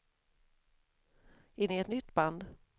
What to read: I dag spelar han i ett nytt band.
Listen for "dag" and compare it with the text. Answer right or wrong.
wrong